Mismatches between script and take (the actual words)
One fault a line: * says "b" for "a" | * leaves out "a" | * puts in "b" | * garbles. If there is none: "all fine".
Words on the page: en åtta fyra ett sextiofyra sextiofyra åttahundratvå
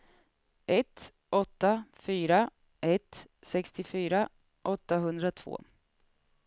* says "ett" for "en"
* leaves out "sextiofyra"